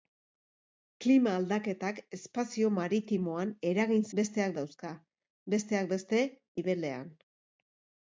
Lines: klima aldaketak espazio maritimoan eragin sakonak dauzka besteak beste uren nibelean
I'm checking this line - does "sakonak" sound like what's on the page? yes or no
no